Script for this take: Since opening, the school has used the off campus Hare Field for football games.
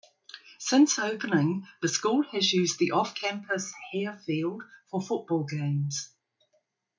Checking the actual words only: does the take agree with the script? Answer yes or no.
yes